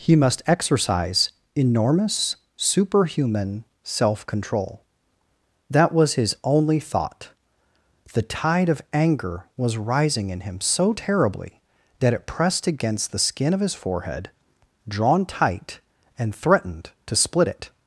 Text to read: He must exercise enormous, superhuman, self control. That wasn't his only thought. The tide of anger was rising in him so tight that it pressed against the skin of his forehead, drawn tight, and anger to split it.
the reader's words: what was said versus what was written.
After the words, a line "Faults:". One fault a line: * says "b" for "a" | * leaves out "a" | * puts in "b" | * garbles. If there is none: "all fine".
He must exercise enormous, superhuman, self control. That was his only thought. The tide of anger was rising in him so terribly that it pressed against the skin of his forehead, drawn tight, and threatened to split it.
Faults:
* says "was" for "wasn't"
* says "terribly" for "tight"
* says "threatened" for "anger"